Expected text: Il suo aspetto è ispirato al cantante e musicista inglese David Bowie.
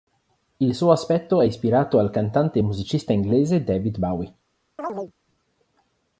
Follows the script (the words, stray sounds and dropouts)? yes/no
no